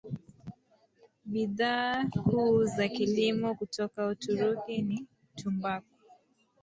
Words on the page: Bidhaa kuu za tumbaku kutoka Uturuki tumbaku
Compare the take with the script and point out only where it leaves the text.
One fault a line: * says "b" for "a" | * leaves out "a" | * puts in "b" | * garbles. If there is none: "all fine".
* says "kilimo" for "tumbaku"
* puts in "ni"